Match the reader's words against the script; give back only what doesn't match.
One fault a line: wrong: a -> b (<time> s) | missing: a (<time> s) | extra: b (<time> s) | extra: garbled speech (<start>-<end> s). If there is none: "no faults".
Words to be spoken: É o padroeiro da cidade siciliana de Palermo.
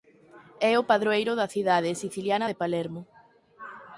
no faults